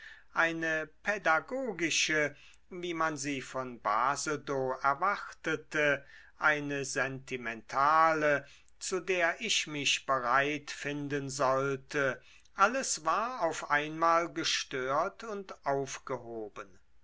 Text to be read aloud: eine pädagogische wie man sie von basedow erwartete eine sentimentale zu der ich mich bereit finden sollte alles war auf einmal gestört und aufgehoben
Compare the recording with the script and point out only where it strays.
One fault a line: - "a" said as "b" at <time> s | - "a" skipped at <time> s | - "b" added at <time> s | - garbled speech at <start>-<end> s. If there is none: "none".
none